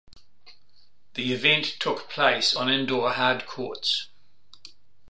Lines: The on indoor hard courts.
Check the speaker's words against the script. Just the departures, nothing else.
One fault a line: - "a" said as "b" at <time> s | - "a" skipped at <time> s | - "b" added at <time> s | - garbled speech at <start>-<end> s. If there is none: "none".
- "event took place" added at 1.3 s